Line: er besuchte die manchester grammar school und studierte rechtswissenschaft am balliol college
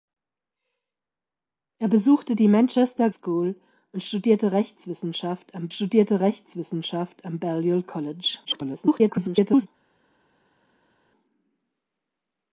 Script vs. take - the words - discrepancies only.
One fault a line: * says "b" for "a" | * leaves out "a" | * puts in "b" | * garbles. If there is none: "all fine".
* leaves out "grammar"
* puts in "studierte rechtswissenschaft am"
* garbles